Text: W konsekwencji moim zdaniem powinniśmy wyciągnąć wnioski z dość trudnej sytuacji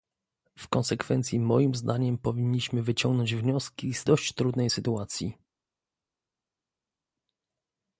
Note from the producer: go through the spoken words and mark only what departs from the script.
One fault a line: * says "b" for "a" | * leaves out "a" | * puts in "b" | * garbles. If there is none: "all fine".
all fine